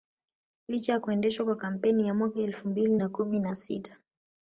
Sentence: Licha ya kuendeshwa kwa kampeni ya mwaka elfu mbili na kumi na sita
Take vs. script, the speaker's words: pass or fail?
pass